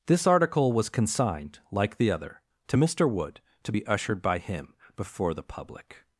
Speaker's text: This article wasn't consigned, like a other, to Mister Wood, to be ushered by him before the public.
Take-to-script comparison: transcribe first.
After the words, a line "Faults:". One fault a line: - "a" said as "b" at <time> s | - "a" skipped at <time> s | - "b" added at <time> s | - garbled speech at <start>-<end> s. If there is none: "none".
This article was consigned, like the other, to Mister Wood, to be ushered by him before the public.
Faults:
- "wasn't" said as "was" at 0.7 s
- "a" said as "the" at 2.0 s